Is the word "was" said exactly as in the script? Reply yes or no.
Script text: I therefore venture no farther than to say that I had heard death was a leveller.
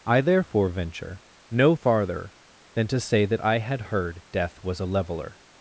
yes